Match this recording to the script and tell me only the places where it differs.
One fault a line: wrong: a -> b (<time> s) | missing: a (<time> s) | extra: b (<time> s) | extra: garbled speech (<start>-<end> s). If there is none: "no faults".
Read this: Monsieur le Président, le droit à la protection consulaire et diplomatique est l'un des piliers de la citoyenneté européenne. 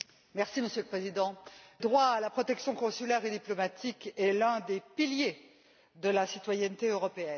missing: le (1.4 s)